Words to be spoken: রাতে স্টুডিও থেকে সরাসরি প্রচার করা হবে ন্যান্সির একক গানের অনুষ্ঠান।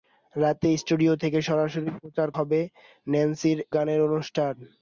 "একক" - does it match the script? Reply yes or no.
no